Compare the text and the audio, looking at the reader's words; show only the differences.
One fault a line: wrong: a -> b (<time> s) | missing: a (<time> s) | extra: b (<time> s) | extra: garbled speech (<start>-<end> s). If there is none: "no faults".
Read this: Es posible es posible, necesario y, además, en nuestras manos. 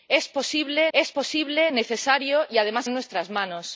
no faults